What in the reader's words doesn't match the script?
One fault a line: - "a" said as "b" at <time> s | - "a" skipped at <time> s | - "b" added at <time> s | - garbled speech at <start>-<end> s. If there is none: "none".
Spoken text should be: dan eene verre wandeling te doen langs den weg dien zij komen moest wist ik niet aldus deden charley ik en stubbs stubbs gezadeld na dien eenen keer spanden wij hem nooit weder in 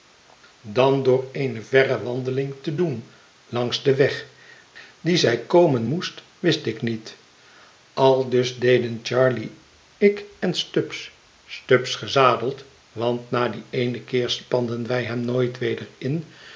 - "door" added at 1.0 s
- "want" added at 12.9 s